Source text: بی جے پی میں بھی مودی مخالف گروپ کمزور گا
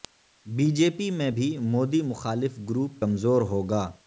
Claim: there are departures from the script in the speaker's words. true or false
true